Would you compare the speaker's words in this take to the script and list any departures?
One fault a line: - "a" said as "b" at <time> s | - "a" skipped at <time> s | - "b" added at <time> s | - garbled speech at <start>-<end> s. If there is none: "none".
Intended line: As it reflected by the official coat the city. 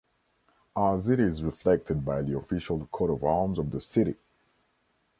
- "is" added at 1.2 s
- "of arms of" added at 3.1 s